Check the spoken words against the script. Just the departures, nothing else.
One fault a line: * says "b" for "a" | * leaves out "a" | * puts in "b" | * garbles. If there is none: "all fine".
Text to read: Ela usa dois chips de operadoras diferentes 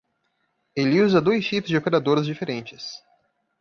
* says "Ele" for "Ela"